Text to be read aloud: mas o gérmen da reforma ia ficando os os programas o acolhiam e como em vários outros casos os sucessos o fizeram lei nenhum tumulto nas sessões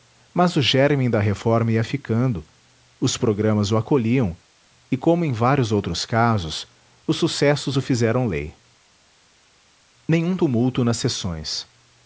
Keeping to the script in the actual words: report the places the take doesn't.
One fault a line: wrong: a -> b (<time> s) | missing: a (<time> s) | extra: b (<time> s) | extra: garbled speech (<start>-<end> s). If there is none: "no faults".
missing: os (3.2 s)